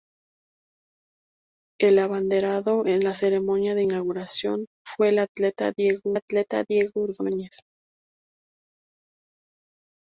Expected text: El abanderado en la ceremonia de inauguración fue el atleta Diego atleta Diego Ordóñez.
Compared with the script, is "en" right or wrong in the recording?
right